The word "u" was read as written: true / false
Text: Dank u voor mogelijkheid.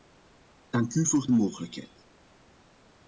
true